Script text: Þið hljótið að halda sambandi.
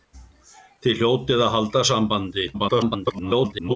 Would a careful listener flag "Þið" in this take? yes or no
no